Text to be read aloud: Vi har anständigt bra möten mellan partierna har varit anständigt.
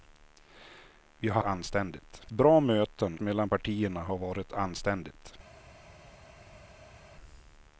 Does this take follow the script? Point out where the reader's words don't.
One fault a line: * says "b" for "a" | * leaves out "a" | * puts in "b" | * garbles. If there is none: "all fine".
all fine